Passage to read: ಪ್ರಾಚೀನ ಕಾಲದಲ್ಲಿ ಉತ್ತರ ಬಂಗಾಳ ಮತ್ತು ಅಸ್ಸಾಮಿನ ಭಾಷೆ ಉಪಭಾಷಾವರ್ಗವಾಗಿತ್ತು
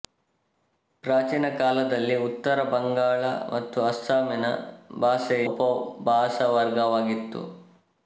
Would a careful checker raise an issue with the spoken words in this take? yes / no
no